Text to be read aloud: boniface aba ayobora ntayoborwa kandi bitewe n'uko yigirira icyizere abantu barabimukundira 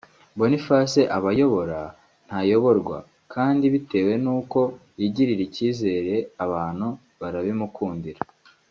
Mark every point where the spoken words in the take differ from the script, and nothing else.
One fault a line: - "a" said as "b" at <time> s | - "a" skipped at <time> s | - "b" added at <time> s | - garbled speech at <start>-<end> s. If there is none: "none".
none